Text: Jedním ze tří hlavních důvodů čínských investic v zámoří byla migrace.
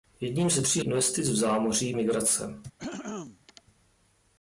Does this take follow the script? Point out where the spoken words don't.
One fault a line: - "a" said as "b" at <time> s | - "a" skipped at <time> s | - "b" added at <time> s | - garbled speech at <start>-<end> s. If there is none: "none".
- "hlavních důvodů čínských" skipped at 0.8 s
- "byla" skipped at 1.9 s